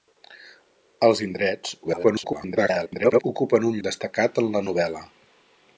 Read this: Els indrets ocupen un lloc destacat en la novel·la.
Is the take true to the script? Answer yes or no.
no